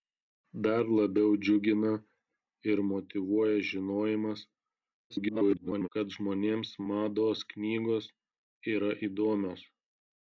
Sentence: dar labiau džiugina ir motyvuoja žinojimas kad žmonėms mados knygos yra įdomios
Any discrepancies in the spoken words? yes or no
yes